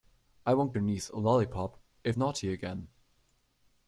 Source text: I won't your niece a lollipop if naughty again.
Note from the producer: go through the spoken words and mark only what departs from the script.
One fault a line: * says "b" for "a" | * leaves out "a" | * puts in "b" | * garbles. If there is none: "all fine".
all fine